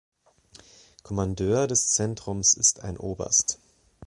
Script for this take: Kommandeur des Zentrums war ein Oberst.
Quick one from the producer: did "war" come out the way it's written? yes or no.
no